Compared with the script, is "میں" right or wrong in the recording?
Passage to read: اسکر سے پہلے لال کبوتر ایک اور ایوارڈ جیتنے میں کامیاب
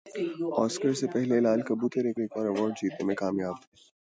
right